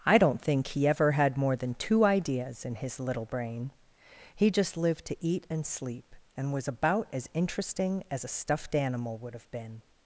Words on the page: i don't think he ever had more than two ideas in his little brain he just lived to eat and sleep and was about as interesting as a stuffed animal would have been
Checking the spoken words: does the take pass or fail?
pass